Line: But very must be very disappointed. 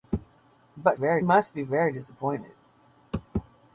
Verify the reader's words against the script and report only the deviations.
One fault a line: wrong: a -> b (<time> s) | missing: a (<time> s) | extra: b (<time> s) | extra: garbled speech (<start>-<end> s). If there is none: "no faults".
no faults